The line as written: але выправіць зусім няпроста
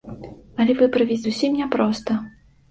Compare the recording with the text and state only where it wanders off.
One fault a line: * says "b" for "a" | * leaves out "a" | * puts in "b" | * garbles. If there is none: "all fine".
all fine